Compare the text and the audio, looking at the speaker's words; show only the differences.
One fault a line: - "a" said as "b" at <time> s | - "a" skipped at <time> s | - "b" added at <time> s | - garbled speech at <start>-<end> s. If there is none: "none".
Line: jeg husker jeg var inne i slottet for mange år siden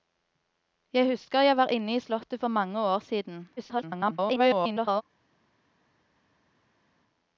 - garbled speech at 3.6-5.0 s